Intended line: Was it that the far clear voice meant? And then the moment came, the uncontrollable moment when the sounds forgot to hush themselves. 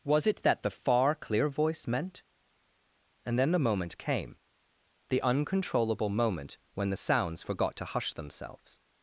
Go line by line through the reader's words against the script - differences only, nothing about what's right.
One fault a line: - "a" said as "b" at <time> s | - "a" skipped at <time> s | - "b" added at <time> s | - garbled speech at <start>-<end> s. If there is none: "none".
none